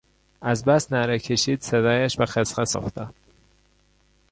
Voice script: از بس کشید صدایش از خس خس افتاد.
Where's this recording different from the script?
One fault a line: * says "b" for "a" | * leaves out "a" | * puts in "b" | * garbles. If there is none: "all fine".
* puts in "نعره"
* says "به" for "از"